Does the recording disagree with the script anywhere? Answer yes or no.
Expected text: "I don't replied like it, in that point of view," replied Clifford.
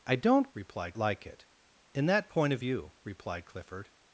no